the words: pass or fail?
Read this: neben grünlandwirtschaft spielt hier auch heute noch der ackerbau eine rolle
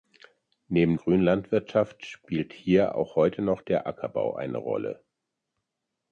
pass